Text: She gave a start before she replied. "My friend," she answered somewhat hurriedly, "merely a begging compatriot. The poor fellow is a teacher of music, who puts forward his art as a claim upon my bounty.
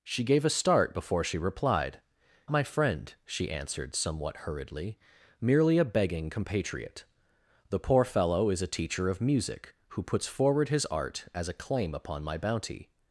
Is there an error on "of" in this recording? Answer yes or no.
no